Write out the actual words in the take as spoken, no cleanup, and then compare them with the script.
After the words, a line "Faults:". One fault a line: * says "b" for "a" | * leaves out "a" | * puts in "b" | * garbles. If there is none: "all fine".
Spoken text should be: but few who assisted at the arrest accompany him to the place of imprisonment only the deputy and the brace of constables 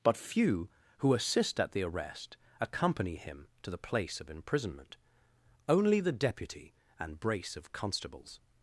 but few who assist at the arrest accompany him to the place of imprisonment only the deputy and brace of constables
Faults:
* says "assist" for "assisted"
* leaves out "the"